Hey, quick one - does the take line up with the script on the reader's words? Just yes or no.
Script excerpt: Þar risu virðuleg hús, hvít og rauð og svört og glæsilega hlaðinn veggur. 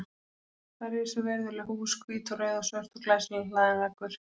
yes